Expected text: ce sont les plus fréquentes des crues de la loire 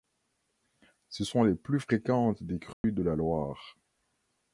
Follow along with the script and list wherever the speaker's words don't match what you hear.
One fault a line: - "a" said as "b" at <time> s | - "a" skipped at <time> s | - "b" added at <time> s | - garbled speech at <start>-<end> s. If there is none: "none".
none